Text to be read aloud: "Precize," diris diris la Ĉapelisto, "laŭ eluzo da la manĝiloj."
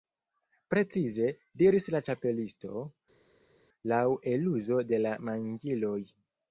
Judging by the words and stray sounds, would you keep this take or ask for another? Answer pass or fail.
fail